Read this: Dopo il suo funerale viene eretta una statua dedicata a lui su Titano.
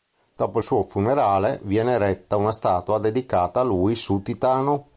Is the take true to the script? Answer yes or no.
yes